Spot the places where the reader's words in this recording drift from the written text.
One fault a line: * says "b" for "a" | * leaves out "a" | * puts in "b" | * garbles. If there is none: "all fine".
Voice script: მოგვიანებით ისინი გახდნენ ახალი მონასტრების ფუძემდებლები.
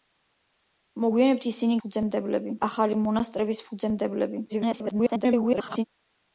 * says "ფუძემდებლები" for "გახდნენ"
* garbles